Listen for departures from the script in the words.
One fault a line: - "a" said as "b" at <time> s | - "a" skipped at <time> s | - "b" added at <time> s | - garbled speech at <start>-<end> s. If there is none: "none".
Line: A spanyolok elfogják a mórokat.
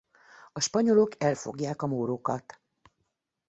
none